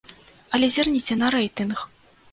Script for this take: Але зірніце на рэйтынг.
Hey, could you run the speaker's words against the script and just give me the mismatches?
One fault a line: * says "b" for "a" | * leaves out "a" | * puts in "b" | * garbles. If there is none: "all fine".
all fine